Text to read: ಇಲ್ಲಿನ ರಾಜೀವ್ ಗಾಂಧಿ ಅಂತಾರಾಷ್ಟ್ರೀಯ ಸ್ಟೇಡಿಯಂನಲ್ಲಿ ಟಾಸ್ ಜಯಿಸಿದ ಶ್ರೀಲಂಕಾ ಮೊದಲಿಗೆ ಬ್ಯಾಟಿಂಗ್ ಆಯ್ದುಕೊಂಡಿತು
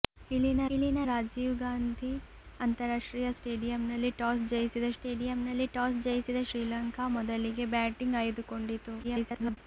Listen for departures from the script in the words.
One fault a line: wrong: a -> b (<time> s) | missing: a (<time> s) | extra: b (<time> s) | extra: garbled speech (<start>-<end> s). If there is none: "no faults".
extra: ಇಲ್ಲಿನ (0.7 s)
extra: ಸ್ಟೇಡಿಯಂನಲ್ಲಿ ಟಾಸ್ ಜಯಿಸಿದ (5.0 s)
extra: garbled speech (9.0-9.6 s)